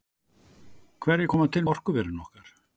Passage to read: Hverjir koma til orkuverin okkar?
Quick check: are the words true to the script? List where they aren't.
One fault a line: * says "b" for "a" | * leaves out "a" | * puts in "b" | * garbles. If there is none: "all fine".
all fine